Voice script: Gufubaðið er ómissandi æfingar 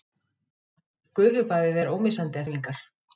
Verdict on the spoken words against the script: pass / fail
pass